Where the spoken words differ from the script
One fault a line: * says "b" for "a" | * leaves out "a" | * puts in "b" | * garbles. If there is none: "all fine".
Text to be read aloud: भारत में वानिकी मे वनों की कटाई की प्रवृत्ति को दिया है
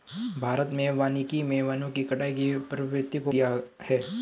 all fine